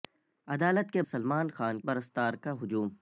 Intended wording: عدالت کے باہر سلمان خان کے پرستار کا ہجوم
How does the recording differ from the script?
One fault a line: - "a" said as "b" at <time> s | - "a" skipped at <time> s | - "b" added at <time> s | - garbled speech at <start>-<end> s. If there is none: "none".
- "باہر" skipped at 1.0 s
- "کے" skipped at 1.8 s